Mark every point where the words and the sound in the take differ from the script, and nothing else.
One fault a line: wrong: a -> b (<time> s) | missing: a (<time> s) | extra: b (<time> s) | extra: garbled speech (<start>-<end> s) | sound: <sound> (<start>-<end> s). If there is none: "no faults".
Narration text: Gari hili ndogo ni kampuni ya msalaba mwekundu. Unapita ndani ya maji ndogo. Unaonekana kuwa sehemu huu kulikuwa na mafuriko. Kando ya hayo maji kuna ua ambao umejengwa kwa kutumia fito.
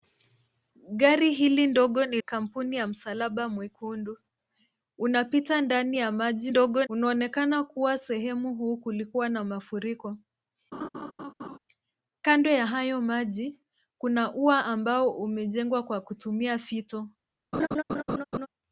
sound: laugh (10.7-11.6 s)
sound: laugh (17.5-18.5 s)